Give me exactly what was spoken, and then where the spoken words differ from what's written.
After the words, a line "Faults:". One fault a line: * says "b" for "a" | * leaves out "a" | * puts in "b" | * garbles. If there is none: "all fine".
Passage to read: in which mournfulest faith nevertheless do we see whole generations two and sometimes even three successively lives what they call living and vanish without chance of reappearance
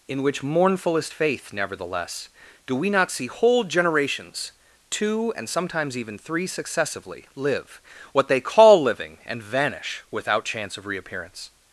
in which mournfulest faith nevertheless do we not see whole generations two and sometimes even three successively live what they call living and vanish without chance of reappearance
Faults:
* puts in "not"
* says "live" for "lives"